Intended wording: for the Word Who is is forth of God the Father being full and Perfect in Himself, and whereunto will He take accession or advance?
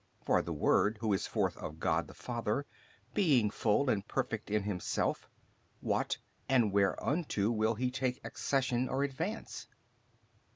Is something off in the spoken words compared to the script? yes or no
yes